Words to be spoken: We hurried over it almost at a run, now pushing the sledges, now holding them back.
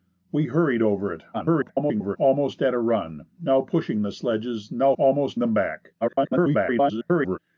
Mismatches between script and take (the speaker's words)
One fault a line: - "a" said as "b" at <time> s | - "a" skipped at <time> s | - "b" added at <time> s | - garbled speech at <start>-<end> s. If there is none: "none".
- garbled speech at 1.3-2.2 s
- "holding" said as "almost" at 5.0 s
- garbled speech at 6.0-7.4 s